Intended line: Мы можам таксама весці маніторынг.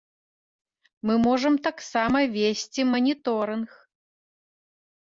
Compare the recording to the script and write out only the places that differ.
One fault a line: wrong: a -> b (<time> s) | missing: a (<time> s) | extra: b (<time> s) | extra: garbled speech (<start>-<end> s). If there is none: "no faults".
no faults